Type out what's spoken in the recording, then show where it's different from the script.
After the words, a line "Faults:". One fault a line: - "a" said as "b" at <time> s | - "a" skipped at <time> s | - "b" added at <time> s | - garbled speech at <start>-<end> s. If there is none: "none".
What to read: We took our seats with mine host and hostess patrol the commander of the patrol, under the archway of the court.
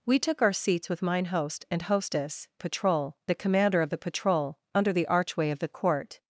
We took our seats with mine host and hostess patrol the commander of the patrol, under the archway of the court.
Faults:
none